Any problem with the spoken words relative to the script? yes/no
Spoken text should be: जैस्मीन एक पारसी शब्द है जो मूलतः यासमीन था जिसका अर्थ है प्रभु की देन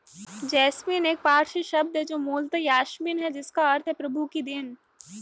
yes